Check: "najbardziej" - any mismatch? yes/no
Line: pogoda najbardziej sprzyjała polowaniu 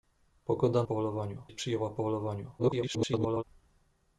yes